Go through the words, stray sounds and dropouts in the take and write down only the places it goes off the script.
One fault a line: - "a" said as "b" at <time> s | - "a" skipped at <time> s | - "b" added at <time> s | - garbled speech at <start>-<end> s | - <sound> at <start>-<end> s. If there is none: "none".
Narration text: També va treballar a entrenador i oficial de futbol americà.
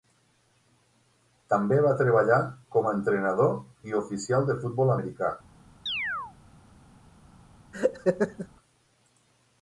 - "com" added at 2.8 s
- chirp at 5.9-6.3 s
- laugh at 7.7-8.5 s